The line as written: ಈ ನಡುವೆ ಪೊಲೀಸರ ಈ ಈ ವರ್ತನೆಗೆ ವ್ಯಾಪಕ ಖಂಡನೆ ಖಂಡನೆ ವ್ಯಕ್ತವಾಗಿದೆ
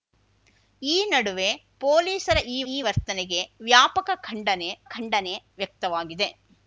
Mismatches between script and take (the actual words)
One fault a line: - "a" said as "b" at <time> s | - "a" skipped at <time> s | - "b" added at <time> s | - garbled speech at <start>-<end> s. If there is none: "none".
none